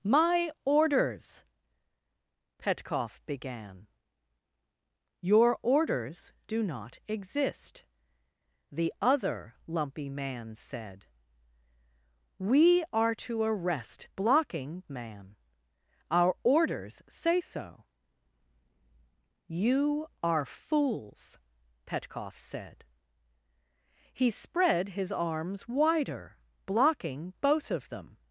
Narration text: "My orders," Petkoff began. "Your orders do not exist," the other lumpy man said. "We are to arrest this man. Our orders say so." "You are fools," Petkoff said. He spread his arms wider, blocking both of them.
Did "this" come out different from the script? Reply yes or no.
yes